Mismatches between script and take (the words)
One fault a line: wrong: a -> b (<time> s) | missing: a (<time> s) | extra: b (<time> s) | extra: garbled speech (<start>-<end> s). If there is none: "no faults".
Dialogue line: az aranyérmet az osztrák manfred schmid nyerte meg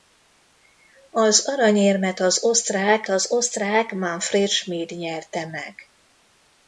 extra: az osztrák (3.1 s)